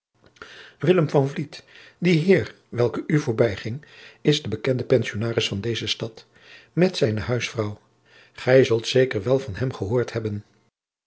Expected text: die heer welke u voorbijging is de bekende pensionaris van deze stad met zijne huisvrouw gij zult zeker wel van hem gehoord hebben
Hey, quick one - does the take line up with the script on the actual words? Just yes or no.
yes